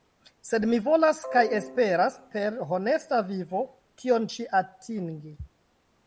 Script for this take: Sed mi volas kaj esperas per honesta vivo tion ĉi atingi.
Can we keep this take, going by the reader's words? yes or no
yes